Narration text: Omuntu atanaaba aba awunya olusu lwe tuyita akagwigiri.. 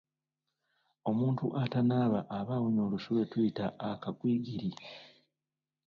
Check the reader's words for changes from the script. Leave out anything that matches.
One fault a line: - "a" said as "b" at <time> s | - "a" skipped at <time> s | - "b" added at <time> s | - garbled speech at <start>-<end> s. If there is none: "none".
none